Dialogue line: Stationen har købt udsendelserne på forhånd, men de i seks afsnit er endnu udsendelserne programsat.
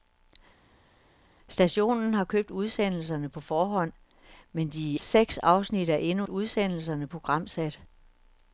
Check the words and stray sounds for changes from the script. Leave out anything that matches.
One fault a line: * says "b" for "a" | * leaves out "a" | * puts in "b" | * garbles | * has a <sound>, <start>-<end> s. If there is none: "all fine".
all fine